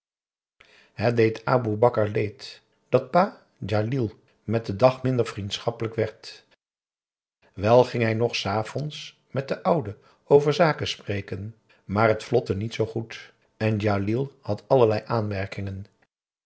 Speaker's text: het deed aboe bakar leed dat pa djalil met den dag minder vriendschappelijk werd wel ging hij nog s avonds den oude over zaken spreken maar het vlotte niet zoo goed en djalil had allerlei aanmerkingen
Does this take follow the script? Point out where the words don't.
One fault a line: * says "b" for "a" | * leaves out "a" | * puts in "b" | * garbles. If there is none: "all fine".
* puts in "met"